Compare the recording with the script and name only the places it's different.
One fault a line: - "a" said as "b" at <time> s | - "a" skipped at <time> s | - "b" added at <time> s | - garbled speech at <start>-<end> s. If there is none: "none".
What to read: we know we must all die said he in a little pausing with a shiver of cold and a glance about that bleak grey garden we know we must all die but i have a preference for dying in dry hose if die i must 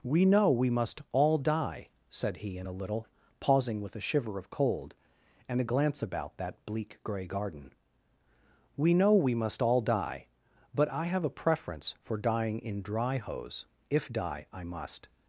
none